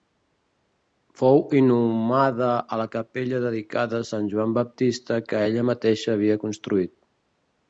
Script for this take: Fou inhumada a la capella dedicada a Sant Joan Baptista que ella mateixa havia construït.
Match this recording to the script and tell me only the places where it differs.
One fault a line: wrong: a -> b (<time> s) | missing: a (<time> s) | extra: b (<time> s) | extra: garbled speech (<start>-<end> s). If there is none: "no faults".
no faults